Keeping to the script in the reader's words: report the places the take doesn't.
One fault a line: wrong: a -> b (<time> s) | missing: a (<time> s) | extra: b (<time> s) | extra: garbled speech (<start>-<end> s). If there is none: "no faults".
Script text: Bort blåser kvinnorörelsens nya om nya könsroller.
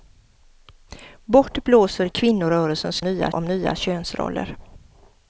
no faults